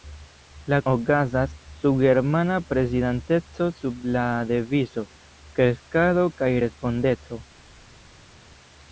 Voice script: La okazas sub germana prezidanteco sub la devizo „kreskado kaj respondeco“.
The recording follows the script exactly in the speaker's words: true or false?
true